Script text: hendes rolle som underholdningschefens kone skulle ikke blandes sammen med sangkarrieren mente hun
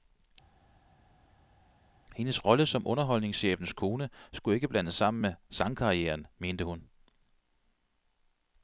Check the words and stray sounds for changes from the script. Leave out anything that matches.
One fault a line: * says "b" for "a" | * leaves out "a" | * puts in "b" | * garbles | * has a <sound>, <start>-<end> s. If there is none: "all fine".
all fine